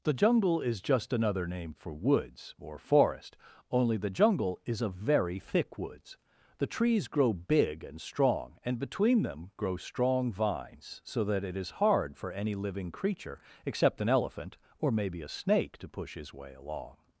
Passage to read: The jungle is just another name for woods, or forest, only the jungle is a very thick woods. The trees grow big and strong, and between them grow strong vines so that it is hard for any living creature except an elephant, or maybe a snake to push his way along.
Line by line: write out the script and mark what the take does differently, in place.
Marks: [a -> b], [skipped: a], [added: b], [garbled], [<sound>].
The jungle is just another name for woods, or forest, only the jungle is a very thick woods. The trees grow big and strong, and between them grow strong vines so that it is hard for any living creature except an elephant, or maybe a snake to push his way along.